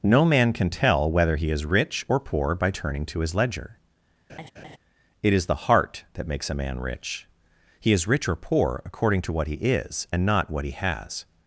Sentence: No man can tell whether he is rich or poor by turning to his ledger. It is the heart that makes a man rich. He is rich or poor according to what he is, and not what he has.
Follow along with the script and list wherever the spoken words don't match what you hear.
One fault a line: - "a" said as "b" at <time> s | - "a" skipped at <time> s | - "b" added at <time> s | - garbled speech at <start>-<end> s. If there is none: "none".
none